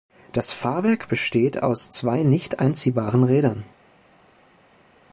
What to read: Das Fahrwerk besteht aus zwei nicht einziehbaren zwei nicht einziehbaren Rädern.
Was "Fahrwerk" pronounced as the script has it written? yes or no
yes